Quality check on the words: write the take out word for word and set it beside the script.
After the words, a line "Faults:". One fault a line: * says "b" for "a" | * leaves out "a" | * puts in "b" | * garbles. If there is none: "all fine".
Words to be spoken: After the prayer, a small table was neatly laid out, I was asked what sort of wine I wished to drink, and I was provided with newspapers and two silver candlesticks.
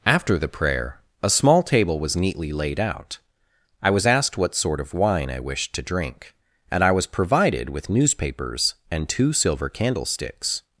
After the prayer, a small table was neatly laid out, I was asked what sort of wine I wished to drink, and I was provided with newspapers and two silver candlesticks.
Faults:
all fine